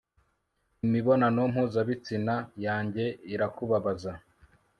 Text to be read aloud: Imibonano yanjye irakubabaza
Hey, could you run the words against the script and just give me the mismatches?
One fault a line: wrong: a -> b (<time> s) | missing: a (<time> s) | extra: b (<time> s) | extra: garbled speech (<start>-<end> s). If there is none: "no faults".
extra: mpuzabitsina (1.5 s)